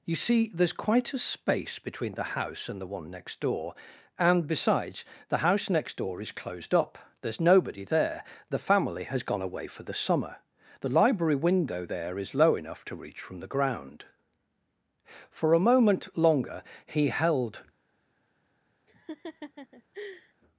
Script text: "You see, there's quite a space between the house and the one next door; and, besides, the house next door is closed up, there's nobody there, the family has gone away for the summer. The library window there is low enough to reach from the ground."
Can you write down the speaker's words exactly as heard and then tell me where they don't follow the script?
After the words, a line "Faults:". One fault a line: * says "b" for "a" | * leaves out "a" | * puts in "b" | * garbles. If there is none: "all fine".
"You see, there's quite a space between the house and the one next door; and, besides, the house next door is closed up, there's nobody there, the family has gone away for the summer. The library window there is low enough to reach from the ground." For a moment longer he held
Faults:
* puts in "For a moment longer he held"